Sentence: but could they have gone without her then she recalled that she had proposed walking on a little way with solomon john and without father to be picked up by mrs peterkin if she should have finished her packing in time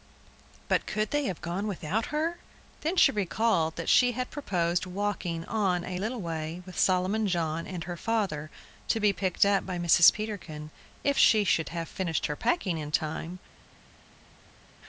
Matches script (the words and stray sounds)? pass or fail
fail